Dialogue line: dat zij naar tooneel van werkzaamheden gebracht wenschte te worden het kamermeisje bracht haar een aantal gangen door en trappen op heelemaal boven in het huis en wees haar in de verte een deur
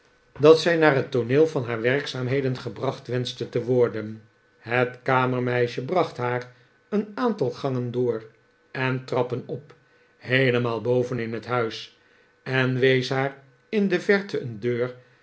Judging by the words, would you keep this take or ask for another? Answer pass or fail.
fail